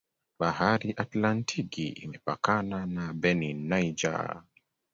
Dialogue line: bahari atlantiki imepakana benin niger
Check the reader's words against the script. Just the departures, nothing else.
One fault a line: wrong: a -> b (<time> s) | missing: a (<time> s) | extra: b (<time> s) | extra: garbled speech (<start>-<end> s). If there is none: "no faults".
extra: na (2.9 s)